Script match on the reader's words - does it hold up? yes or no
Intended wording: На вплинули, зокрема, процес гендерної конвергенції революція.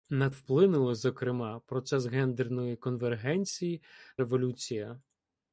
yes